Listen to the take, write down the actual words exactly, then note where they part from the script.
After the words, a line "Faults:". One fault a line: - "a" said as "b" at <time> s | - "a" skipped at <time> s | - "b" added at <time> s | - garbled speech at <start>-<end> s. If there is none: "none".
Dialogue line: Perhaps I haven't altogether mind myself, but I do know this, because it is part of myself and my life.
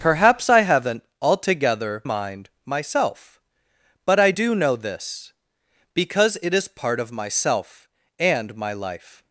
Perhaps I haven't altogether mind myself, but I do know this, because it is part of myself and my life.
Faults:
none